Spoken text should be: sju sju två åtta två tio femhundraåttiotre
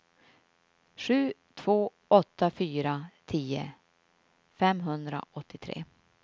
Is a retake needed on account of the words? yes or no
yes